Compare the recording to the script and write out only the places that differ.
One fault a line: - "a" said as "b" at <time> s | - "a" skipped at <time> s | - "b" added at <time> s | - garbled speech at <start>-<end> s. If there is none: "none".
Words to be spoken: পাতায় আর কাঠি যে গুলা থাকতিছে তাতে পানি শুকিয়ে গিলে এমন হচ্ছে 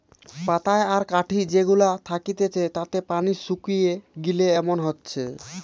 none